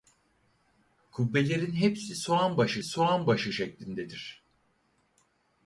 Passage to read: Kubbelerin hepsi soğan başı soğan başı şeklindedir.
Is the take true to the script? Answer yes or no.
yes